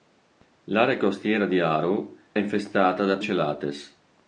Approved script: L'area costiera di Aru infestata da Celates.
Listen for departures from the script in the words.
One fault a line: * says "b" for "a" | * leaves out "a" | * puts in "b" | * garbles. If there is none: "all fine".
all fine